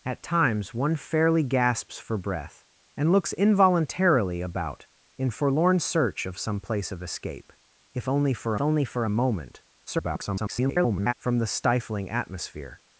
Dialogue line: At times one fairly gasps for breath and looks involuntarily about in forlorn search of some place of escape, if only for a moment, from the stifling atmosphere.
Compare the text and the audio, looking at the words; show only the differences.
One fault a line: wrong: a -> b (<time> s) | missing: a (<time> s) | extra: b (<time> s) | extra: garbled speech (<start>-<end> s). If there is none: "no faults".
extra: only for (8.6 s)
extra: garbled speech (9.9-11.1 s)